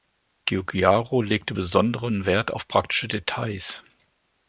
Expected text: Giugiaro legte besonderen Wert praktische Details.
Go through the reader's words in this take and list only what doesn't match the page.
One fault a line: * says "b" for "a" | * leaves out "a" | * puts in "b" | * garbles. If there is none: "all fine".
* puts in "auf"